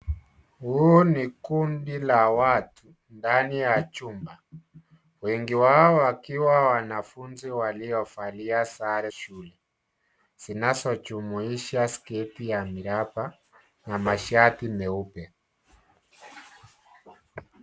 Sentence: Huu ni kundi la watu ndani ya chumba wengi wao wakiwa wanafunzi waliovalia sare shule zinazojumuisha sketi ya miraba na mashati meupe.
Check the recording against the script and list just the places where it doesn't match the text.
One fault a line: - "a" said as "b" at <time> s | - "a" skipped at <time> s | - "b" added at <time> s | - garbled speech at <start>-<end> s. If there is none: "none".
none